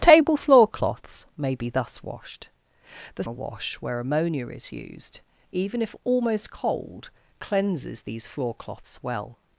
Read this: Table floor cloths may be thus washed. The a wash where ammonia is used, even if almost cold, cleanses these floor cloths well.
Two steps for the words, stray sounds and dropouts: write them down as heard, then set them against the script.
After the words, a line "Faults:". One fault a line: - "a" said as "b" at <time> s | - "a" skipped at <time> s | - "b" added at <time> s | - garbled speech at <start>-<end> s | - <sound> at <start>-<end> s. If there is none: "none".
Table floor cloths may be thus washed. The a wash where ammonia is used, even if almost cold, cleanses these floor cloths well.
Faults:
none